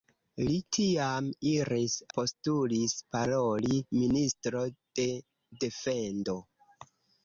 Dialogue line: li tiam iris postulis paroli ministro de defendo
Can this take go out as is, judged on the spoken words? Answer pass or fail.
pass